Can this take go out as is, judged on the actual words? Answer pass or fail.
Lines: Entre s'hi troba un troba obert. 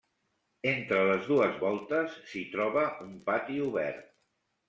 fail